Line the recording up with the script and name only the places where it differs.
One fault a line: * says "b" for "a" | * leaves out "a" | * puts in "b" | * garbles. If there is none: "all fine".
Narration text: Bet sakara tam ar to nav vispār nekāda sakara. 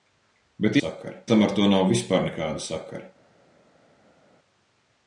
all fine